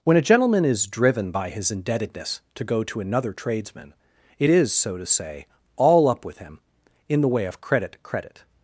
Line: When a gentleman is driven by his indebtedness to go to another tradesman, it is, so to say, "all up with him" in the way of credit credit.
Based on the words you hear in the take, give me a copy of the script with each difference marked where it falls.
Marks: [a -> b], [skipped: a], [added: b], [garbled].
When a gentleman is driven by his indebtedness to go to another tradesman, it is, so to say, "all up with him" in the way of credit credit.